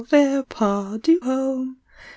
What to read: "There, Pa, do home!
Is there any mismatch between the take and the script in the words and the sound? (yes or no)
no